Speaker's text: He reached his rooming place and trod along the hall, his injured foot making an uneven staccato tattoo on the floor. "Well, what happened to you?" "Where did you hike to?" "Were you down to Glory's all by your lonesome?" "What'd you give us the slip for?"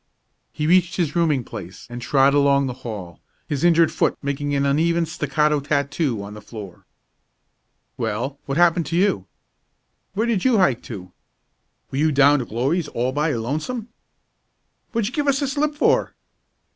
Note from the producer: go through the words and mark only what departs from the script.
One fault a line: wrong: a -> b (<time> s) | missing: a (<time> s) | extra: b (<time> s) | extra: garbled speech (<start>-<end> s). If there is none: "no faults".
no faults